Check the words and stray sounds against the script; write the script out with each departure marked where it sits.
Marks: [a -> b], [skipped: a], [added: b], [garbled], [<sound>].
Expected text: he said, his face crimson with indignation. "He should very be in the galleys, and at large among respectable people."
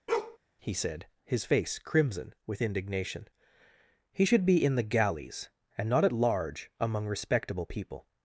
[bark] he said, his face crimson with indignation. "He should [skipped: very] be in the galleys, and [added: not] at large among respectable people."